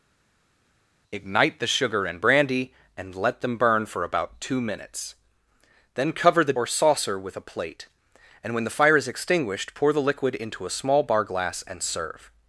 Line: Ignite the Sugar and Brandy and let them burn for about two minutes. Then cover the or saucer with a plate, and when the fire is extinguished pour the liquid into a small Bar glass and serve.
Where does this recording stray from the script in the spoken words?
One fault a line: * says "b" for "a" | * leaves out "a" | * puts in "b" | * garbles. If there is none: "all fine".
all fine